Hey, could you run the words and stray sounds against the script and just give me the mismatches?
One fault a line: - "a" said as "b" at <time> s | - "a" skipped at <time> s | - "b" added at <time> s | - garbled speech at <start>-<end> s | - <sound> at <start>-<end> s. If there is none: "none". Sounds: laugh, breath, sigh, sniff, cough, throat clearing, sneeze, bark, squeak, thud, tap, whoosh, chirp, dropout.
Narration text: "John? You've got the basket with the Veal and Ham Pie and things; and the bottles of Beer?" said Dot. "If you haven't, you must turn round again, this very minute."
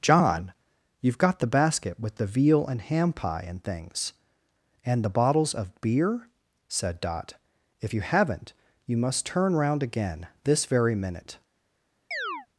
- chirp at 12.1-12.5 s